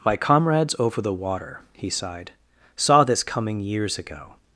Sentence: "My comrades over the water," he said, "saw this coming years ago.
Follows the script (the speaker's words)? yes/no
no